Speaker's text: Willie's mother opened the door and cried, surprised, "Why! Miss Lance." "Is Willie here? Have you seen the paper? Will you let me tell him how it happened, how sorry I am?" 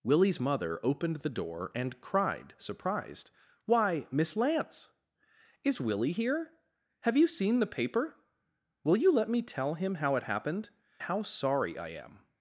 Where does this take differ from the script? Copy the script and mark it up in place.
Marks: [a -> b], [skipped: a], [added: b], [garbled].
Willie's mother opened the door and cried, surprised, "Why! Miss Lance." "Is Willie here? Have you seen the paper? Will you let me tell him how it happened, how sorry I am?"